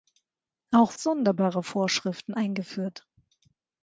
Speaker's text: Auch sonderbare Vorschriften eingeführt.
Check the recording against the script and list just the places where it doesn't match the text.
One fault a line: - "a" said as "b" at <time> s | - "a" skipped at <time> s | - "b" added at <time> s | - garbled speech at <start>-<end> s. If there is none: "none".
none